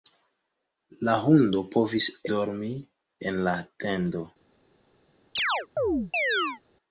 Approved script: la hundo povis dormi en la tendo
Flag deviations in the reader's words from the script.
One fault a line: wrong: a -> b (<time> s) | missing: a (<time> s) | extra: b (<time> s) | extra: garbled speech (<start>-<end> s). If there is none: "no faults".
no faults